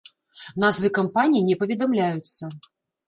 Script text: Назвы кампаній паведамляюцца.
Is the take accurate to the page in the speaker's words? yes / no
no